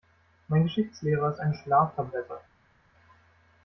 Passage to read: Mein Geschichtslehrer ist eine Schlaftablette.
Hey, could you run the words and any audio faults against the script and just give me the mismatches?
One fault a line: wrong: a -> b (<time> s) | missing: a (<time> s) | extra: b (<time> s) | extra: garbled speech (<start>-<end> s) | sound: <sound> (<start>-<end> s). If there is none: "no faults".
no faults